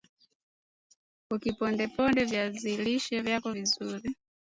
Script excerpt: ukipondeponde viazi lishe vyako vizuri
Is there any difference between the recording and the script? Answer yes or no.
no